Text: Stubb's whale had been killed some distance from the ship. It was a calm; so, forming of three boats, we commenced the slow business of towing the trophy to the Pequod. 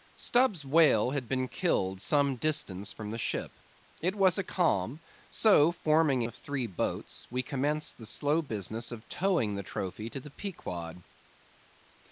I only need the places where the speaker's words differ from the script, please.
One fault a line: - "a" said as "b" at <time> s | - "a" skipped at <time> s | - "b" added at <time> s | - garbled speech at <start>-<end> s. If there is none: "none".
none